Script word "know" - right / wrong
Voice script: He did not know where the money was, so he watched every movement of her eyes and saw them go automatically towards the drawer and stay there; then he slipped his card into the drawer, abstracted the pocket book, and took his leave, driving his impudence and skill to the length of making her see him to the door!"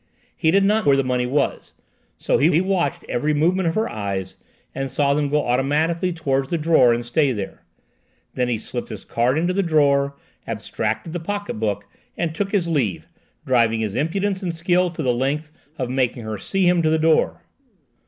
wrong